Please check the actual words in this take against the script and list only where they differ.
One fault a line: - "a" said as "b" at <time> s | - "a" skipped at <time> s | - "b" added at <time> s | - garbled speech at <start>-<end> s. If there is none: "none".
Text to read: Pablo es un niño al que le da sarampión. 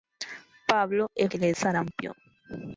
- "un niño al" skipped at 1.3 s
- "da" skipped at 1.5 s